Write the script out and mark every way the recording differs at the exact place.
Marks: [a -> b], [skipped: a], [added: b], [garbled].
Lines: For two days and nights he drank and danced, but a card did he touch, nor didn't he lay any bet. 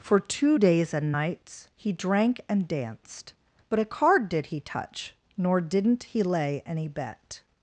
For two days and nights he drank and danced, but a card did he touch, nor didn't he lay any bet.